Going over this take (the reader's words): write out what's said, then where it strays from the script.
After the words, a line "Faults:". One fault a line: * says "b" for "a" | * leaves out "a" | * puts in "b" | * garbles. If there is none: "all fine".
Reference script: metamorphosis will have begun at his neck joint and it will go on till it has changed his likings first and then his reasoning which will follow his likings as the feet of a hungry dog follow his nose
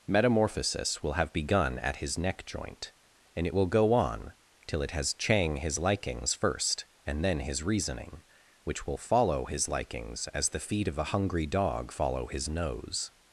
metamorphosis will have begun at his neck joint and it will go on till it has chang his likings first and then his reasoning which will follow his likings as the feet of a hungry dog follow his nose
Faults:
* says "chang" for "changed"